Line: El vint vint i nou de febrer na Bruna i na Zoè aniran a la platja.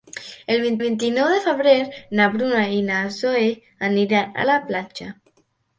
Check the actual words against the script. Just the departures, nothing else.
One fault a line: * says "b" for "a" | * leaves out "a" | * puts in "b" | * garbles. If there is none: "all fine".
all fine